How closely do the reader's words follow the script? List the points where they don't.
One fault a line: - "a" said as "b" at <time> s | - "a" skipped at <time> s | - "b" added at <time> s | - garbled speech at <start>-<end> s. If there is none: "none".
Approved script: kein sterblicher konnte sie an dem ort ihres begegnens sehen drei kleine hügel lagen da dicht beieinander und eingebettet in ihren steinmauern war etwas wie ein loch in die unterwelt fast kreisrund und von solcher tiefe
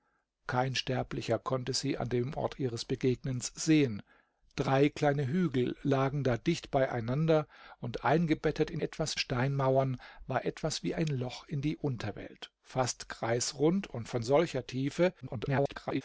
- "ihren" said as "etwas" at 8.8 s
- garbled speech at 15.2-16.0 s